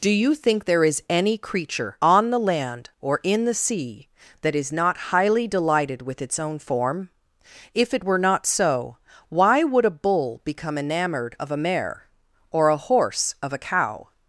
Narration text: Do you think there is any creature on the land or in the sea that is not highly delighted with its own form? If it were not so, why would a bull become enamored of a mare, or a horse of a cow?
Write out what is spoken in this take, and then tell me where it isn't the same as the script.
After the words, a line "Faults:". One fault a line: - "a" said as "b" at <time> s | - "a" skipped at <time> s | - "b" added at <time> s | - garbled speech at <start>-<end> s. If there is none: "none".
Do you think there is any creature on the land or in the sea that is not highly delighted with its own form? If it were not so, why would a bull become enamored of a mare, or a horse of a cow?
Faults:
none